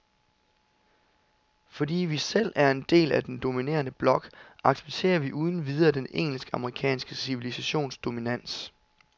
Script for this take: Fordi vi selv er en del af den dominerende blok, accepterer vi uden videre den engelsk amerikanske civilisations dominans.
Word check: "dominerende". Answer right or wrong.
right